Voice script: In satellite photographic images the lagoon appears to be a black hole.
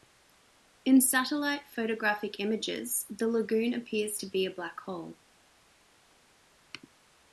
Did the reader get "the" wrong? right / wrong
right